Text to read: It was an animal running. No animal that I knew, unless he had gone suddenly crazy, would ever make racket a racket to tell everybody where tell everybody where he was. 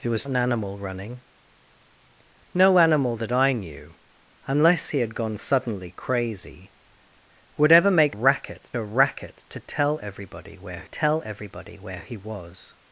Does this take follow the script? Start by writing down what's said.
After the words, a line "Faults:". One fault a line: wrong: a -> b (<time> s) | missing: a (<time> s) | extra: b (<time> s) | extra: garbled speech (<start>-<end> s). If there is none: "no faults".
It was an animal running. No animal that I knew, unless he had gone suddenly crazy, would ever make racket a racket to tell everybody where tell everybody where he was.
Faults:
no faults